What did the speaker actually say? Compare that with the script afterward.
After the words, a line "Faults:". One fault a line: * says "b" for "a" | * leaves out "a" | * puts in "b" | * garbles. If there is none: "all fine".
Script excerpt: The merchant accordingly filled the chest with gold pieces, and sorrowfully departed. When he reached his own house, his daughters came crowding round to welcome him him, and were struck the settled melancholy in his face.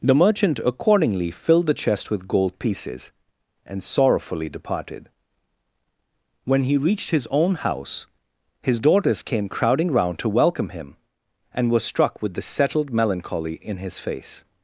The merchant accordingly filled the chest with gold pieces, and sorrowfully departed. When he reached his own house, his daughters came crowding round to welcome him, and were struck with the settled melancholy in his face.
Faults:
* leaves out "him"
* puts in "with"